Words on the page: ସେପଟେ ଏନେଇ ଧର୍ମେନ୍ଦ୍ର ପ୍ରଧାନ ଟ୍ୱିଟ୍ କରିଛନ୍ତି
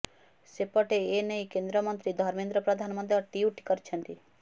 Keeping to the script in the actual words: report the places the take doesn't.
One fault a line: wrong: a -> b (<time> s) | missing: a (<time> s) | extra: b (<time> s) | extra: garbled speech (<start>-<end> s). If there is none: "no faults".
extra: କେନ୍ଦ୍ରମନ୍ତ୍ରୀ (1.5 s)
extra: ମଧ୍ୟ (3.0 s)